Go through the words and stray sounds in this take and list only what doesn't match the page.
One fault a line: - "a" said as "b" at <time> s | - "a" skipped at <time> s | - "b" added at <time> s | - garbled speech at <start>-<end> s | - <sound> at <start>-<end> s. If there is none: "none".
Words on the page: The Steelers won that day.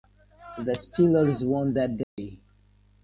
- dropout at 2.0-2.2 s